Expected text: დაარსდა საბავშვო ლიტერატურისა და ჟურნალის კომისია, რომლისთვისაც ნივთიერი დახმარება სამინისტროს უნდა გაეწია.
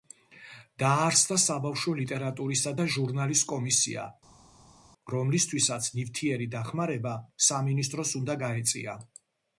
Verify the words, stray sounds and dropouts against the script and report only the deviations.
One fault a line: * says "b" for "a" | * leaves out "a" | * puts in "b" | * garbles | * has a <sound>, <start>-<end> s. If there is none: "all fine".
all fine